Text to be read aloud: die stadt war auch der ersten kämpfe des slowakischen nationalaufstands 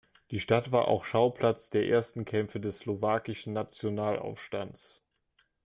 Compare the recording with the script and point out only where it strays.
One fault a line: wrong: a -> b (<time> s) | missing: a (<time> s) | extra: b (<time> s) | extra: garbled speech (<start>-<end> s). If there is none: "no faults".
extra: schauplatz (1.1 s)